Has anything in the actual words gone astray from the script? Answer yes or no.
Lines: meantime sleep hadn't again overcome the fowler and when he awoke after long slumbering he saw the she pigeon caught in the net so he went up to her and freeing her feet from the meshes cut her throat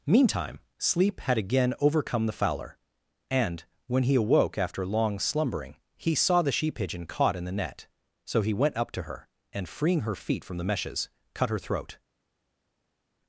yes